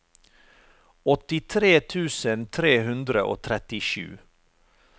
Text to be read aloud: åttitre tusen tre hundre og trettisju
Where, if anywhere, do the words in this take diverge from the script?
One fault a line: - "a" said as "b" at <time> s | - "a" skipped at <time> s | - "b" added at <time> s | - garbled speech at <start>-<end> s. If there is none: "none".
none